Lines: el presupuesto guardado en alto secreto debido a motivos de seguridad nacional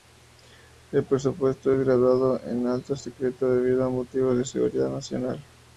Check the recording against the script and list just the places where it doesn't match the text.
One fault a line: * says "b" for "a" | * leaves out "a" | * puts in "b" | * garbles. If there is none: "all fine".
* puts in "es"